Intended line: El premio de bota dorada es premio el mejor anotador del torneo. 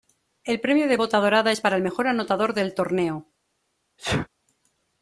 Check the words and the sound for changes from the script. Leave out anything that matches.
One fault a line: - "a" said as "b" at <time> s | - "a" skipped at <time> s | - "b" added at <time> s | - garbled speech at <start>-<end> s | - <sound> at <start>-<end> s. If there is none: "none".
- "premio" said as "para" at 1.6 s
- sneeze at 4.0-4.3 s